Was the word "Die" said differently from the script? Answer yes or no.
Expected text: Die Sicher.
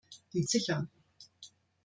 no